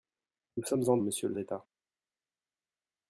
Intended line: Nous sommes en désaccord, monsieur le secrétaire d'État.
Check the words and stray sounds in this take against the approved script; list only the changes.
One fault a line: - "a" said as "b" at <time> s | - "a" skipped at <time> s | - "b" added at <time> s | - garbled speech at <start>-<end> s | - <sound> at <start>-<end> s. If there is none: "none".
- "désaccord" skipped at 1.0 s
- "secrétaire" skipped at 1.4 s